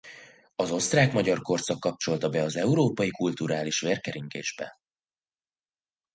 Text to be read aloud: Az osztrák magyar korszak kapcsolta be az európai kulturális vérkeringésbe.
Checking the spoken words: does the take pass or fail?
pass